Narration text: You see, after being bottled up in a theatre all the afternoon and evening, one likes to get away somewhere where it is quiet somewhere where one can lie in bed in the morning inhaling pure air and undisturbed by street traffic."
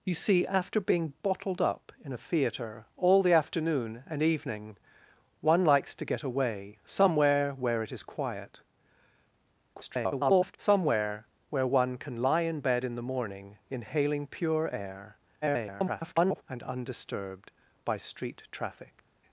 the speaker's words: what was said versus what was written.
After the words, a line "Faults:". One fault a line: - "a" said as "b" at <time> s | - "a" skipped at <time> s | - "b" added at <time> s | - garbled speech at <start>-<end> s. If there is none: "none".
You see, after being bottled up in a theatre all the afternoon and evening, one likes to get away somewhere where it is quiet [garbled] somewhere where one can lie in bed in the morning inhaling pure air [garbled] and undisturbed by street traffic."
Faults:
- garbled speech at 9.7-10.6 s
- garbled speech at 15.4-16.4 s